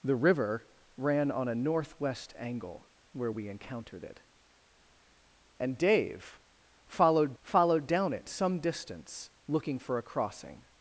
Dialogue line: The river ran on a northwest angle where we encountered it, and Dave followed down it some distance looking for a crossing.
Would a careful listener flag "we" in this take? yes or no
no